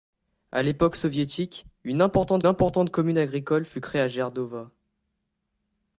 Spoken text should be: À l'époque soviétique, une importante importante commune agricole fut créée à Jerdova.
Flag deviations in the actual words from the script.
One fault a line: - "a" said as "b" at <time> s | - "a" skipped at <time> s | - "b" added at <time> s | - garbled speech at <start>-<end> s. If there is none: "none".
none